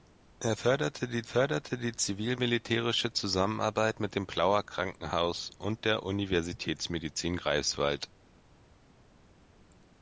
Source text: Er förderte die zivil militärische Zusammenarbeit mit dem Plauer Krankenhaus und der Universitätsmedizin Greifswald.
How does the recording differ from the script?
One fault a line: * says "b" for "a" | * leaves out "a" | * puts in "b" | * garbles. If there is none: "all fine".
* puts in "förderte die"